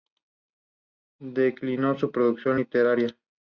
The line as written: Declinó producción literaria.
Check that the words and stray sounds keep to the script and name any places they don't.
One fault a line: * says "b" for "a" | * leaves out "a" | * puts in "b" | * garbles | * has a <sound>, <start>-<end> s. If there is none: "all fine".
* puts in "su"